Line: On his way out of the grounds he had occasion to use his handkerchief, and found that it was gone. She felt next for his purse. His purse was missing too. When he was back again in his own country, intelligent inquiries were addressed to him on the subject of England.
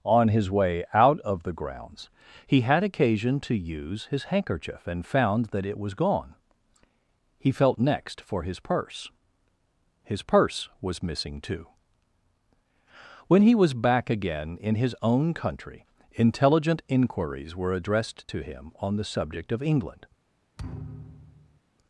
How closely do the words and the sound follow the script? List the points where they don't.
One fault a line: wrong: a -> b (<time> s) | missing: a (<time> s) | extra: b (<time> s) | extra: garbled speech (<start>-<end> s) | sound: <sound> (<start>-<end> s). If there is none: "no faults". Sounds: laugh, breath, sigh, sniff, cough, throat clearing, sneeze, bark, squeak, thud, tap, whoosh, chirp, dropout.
wrong: She -> He (7.4 s)
sound: thud (20.6-21.6 s)